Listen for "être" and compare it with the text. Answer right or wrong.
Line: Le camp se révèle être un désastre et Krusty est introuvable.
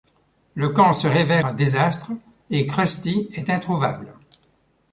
wrong